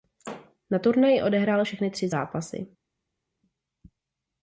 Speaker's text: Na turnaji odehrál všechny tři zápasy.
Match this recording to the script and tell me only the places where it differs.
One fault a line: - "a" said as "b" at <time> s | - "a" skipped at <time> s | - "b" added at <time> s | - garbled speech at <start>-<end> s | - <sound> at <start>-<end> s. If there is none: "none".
none